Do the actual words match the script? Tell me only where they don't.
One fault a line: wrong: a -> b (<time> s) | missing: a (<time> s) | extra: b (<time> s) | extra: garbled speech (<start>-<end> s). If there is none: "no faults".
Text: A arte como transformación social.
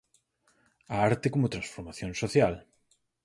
no faults